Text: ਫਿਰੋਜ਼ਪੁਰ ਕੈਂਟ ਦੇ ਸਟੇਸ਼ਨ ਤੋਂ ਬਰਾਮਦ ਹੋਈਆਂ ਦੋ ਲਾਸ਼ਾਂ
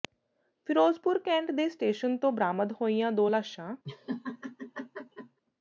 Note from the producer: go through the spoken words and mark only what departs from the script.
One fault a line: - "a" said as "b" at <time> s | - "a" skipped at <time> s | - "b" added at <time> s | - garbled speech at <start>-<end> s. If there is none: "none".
none